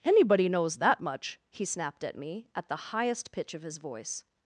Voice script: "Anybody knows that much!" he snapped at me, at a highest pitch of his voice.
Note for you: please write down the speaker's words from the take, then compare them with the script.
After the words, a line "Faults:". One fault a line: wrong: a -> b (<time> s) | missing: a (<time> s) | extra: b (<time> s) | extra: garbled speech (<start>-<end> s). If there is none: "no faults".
"Anybody knows that much!" he snapped at me, at the highest pitch of his voice.
Faults:
wrong: a -> the (2.7 s)